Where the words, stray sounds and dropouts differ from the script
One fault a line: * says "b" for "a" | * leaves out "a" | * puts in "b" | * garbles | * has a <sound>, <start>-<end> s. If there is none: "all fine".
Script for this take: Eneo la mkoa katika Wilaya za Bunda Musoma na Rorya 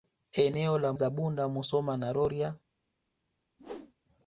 * leaves out "mkoa katika Wilaya"
* has a whoosh, 3.6-3.9 s